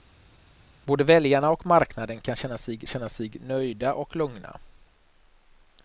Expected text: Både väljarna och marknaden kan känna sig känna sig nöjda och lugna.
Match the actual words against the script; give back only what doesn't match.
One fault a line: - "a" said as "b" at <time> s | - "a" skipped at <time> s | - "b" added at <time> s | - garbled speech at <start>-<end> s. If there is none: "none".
none